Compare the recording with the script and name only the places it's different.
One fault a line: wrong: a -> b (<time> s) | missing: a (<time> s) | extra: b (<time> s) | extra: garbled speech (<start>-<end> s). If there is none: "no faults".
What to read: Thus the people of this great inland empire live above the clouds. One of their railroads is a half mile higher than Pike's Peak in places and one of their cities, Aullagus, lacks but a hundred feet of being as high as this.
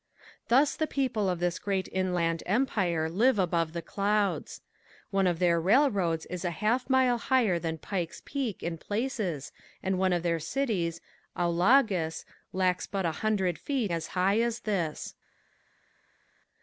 missing: of being (13.9 s)